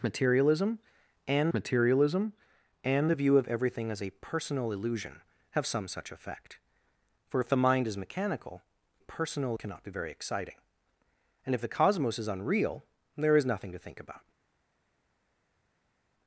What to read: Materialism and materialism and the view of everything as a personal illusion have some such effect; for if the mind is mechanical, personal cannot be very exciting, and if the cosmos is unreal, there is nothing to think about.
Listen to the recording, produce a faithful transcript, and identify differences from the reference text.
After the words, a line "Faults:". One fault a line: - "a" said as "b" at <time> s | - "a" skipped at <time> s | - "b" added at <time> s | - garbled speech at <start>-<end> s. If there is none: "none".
Materialism and materialism and the view of everything as a personal illusion have some such effect; for if the mind is mechanical, personal cannot be very exciting, and if the cosmos is unreal, there is nothing to think about.
Faults:
none